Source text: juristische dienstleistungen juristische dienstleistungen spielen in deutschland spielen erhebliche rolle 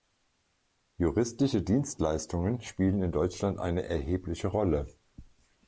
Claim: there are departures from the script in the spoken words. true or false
true